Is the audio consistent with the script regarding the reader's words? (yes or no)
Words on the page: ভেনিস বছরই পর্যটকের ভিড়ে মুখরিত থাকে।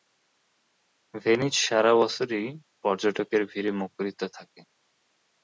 no